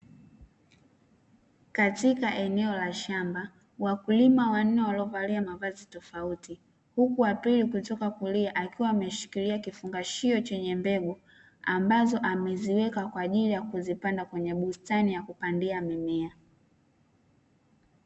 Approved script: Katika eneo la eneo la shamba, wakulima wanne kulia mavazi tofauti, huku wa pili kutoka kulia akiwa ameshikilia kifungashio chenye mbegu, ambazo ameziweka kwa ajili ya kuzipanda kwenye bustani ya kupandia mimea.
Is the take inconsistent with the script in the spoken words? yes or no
yes